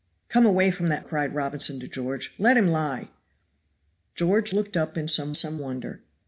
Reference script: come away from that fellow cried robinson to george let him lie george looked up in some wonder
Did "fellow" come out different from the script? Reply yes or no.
yes